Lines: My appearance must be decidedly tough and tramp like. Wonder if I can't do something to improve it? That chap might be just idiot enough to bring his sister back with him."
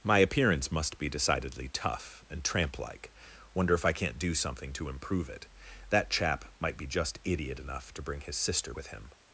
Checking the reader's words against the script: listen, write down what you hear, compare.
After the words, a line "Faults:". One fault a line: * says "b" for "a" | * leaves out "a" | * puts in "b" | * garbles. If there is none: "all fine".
My appearance must be decidedly tough and tramp like. Wonder if I can't do something to improve it? That chap might be just idiot enough to bring his sister with him."
Faults:
* leaves out "back"